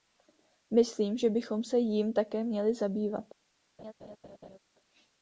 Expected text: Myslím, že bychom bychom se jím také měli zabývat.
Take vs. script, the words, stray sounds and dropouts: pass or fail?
fail